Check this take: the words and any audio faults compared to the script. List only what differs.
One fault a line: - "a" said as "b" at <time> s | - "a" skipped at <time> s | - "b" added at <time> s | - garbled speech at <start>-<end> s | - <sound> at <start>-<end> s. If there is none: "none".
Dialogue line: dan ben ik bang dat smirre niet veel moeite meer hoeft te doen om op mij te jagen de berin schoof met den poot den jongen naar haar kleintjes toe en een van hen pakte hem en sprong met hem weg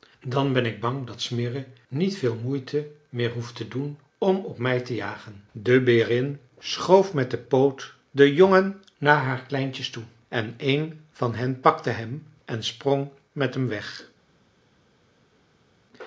none